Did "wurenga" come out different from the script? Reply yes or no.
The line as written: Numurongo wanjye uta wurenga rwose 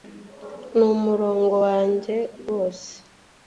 yes